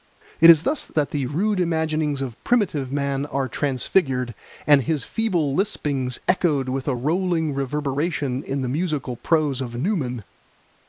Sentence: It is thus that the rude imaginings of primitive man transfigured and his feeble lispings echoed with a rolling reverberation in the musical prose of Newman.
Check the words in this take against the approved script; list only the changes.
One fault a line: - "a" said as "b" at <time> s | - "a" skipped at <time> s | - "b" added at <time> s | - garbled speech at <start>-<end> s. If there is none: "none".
- "are" added at 3.3 s